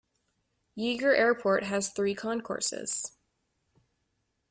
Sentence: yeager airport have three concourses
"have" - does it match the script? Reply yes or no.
no